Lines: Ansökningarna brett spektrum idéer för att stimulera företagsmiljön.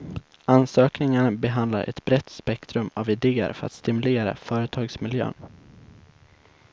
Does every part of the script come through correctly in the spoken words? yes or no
no